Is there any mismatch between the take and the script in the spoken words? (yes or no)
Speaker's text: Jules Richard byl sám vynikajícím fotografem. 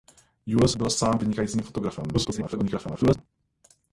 yes